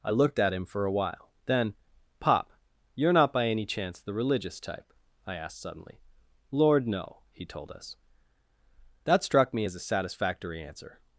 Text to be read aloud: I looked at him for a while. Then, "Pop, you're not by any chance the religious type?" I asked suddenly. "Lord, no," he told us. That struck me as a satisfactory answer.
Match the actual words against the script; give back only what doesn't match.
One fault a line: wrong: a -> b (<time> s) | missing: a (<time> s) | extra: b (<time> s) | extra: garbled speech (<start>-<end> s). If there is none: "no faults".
no faults